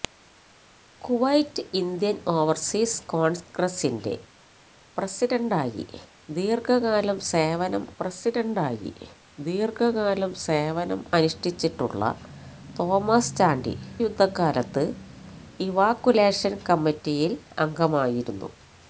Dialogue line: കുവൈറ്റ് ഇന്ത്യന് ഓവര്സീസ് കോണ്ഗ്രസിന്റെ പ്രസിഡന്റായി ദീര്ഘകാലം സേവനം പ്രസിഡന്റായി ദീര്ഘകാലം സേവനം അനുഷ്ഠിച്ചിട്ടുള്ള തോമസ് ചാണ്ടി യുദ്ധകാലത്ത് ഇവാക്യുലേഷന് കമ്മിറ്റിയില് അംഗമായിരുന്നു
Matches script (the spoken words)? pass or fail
pass